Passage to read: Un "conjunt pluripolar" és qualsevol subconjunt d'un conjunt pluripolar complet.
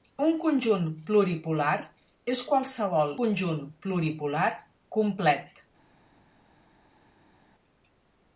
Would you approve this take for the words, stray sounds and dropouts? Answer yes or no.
no